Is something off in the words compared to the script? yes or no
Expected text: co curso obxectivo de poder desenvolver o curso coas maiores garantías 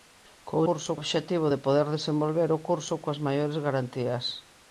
no